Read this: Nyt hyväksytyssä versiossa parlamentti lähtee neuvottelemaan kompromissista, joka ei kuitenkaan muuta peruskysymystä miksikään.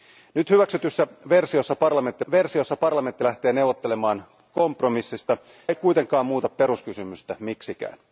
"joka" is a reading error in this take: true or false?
true